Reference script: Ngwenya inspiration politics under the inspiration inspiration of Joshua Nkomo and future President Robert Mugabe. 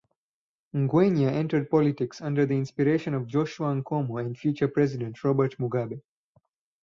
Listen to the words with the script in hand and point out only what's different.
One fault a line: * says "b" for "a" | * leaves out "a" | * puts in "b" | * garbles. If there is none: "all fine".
* says "entered" for "inspiration"
* leaves out "inspiration"